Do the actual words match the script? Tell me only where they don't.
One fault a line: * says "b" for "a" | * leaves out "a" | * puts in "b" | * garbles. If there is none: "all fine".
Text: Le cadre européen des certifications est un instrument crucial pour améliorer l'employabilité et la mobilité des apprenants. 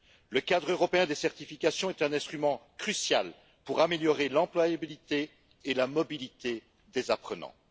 all fine